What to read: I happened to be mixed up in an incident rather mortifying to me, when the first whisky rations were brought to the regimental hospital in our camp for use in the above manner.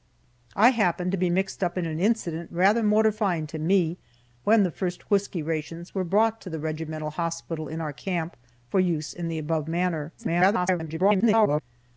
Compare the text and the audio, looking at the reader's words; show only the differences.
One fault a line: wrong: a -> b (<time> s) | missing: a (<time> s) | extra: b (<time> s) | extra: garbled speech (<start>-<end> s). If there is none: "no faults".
extra: garbled speech (10.2-11.6 s)